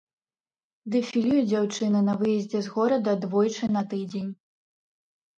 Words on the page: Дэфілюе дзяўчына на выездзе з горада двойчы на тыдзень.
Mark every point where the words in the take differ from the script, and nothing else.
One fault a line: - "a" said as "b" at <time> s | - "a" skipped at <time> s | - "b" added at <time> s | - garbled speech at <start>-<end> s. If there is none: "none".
none